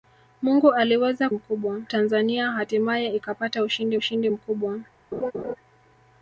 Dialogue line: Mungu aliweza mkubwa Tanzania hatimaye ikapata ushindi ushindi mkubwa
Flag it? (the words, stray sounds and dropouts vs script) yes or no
yes